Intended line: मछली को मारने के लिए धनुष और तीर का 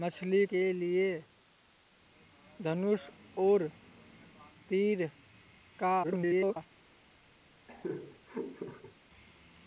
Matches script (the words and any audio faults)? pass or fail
fail